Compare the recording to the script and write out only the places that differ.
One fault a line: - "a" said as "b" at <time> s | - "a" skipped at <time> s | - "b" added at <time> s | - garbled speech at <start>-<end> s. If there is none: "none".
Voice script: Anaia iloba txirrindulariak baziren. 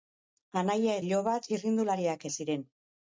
none